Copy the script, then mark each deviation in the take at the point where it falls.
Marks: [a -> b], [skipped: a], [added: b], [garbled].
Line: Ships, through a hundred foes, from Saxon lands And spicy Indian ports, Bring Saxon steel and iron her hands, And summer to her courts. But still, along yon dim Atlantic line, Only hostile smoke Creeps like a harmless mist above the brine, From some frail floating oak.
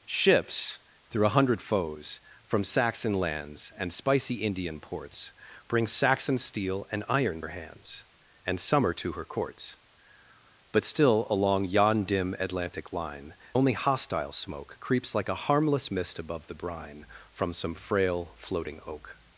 Ships, through a hundred foes, from Saxon lands And spicy Indian ports, Bring Saxon steel and iron her hands, And summer to her courts. But still, along yon dim Atlantic line, Only hostile smoke Creeps like a harmless mist above the brine, From some frail floating oak.